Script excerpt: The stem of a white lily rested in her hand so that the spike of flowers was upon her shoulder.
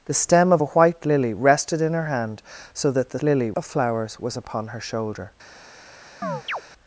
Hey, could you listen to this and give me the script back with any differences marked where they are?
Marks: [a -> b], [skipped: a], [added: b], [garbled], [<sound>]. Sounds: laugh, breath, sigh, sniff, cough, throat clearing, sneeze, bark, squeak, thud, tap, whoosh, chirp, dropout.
The stem of a white lily rested in her hand so that the [spike -> lily] of flowers was upon her shoulder. [chirp]